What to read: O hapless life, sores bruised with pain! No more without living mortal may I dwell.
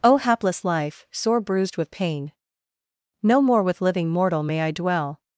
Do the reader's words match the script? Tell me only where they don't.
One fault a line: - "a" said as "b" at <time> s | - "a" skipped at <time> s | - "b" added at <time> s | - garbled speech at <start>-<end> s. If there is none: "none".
- "sores" said as "sore" at 1.1 s
- "without" said as "with" at 3.6 s